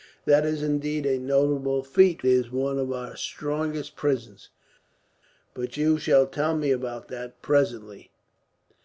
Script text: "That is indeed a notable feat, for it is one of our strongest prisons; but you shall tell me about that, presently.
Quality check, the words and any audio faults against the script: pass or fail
fail